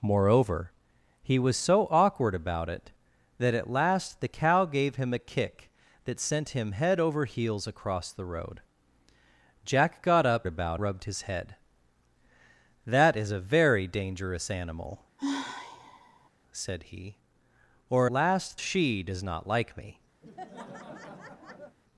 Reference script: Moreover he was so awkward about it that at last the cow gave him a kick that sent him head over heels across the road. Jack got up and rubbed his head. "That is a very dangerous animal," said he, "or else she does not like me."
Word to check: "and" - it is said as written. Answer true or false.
false